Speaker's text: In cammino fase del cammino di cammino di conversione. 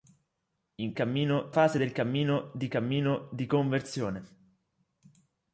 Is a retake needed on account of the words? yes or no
no